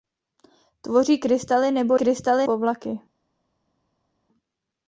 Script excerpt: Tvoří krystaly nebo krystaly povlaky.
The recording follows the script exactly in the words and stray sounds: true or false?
true